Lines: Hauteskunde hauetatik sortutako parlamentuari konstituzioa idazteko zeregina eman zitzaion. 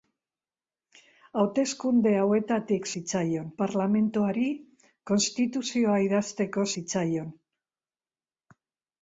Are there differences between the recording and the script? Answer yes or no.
yes